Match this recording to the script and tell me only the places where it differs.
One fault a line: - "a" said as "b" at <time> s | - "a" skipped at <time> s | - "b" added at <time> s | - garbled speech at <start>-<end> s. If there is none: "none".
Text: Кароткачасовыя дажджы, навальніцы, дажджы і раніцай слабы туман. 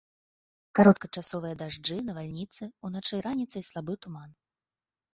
- "дажджы" said as "уначы" at 2.9 s